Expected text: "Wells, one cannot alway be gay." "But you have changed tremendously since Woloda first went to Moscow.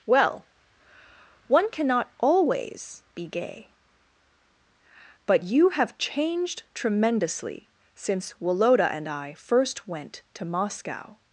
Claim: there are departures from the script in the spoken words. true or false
true